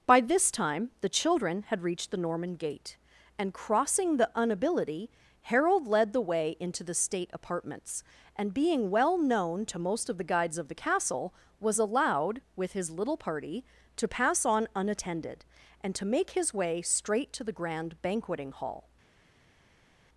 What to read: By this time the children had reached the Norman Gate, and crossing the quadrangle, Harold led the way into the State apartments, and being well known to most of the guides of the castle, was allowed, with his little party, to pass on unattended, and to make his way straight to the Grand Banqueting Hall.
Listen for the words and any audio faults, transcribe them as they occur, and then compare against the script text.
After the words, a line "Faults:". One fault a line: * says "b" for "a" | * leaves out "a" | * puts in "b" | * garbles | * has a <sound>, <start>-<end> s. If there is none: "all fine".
By this time the children had reached the Norman Gate, and crossing the unability, Harold led the way into the State apartments, and being well known to most of the guides of the castle, was allowed, with his little party, to pass on unattended, and to make his way straight to the Grand Banqueting Hall.
Faults:
* says "unability" for "quadrangle"